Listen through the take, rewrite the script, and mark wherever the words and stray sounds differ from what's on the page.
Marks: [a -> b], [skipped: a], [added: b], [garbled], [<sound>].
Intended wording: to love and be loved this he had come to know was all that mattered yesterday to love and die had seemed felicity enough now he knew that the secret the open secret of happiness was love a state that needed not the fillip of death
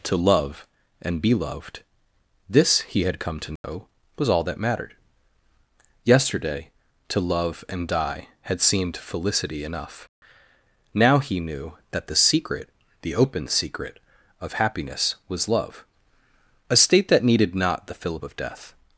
to love and be loved this he had come to know [dropout] was all that mattered yesterday to love and die had seemed felicity enough now he knew that the secret the open secret of happiness was love a state that needed not the fillip of death